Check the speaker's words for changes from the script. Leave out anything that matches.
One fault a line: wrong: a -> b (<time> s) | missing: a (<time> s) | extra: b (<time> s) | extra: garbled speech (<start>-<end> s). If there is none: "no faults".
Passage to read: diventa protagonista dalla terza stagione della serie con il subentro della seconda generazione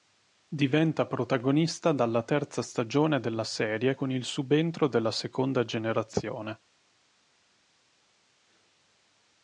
no faults